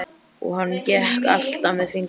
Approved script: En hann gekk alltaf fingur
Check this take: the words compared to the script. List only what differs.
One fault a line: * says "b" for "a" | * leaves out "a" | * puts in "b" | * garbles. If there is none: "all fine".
* says "Og" for "En"
* puts in "með"